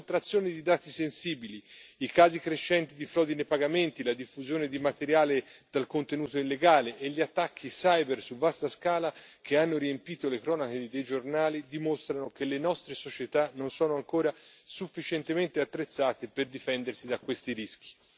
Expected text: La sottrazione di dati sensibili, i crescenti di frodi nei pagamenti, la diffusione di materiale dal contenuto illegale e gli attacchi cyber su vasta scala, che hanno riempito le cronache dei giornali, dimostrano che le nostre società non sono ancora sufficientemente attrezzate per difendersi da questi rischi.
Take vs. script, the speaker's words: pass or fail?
fail